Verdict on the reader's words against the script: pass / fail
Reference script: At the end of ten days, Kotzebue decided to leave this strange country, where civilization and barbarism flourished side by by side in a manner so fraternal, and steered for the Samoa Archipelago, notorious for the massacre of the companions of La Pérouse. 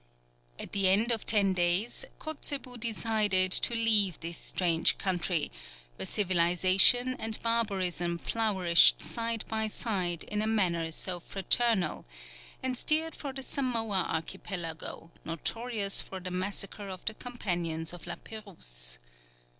fail